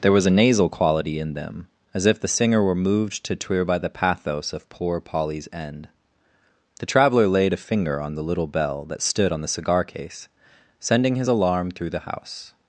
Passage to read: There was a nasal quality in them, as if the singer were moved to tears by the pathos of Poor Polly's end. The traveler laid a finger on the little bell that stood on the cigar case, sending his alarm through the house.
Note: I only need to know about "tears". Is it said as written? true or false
false